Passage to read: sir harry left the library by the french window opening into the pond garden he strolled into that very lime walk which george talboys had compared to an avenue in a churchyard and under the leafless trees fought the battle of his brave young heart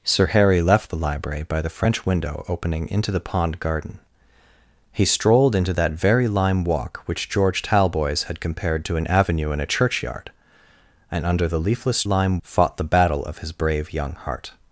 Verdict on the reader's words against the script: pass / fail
fail